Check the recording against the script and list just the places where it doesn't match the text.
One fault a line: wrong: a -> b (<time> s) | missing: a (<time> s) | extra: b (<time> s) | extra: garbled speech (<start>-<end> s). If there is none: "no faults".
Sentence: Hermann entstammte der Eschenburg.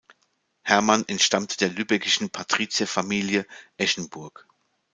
extra: Lübeckischen Patrizierfamilie (1.7 s)